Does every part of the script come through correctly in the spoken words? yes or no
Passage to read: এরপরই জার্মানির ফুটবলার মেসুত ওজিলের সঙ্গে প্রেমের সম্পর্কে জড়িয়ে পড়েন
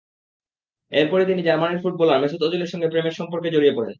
no